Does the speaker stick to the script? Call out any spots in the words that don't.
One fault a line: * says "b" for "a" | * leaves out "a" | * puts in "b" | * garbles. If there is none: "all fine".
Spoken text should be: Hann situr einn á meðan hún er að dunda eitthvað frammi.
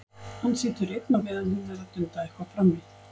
all fine